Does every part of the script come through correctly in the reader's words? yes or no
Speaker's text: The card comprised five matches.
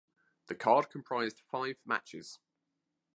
yes